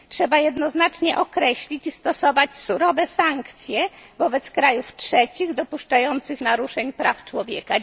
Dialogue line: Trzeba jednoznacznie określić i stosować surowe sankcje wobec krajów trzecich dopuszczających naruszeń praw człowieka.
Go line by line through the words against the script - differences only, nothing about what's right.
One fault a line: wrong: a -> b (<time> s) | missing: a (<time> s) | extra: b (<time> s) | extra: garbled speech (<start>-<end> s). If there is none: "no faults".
no faults